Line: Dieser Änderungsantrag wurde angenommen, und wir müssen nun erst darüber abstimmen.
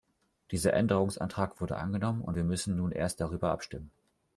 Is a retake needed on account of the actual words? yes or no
no